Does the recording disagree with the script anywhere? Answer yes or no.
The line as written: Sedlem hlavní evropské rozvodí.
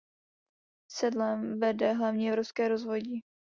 yes